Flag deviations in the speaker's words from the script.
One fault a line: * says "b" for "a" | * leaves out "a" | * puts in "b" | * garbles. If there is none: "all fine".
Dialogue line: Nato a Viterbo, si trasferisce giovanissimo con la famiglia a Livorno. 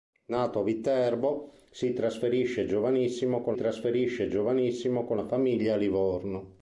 * puts in "trasferisce giovanissimo con"